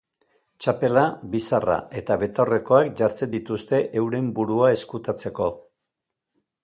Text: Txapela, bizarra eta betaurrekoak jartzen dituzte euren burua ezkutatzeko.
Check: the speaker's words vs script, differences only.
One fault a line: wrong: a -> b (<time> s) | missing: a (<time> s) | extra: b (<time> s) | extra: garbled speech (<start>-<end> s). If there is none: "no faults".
no faults